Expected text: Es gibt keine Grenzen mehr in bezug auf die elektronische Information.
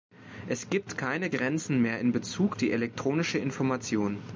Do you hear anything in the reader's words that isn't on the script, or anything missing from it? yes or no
yes